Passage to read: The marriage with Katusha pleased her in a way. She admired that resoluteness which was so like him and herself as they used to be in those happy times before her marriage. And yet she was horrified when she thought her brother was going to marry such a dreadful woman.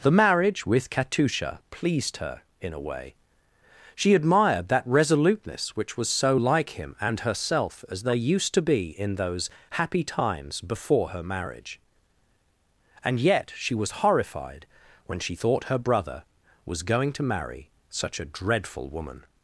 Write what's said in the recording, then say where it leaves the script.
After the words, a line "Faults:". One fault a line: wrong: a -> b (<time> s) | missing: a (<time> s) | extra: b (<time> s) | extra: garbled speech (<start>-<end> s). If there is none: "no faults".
The marriage with Katusha pleased her in a way. She admired that resoluteness which was so like him and herself as they used to be in those happy times before her marriage. And yet she was horrified when she thought her brother was going to marry such a dreadful woman.
Faults:
no faults